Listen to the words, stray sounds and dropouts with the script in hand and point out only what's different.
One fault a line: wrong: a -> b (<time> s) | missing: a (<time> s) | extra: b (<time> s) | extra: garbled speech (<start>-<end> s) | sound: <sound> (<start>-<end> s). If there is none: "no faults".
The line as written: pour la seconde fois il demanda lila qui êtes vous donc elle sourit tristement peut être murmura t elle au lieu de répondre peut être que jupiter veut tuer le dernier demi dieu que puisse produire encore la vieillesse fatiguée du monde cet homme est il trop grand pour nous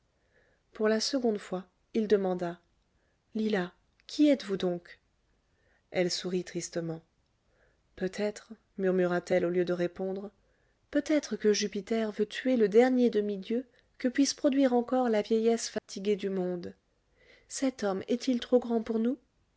sound: dropout (15.8-15.9 s)